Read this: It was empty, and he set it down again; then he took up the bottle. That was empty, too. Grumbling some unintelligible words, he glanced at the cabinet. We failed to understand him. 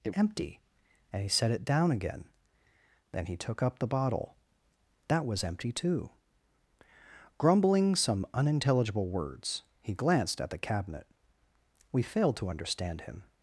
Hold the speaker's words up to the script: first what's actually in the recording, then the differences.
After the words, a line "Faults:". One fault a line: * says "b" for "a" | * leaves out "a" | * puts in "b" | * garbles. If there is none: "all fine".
It empty, and he set it down again; then he took up the bottle. That was empty, too. Grumbling some unintelligible words, he glanced at the cabinet. We failed to understand him.
Faults:
* leaves out "was"